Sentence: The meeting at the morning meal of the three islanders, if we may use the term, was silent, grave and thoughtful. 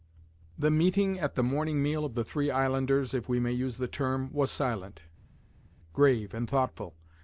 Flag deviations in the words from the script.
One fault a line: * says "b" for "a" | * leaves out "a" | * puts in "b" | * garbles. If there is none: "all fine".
all fine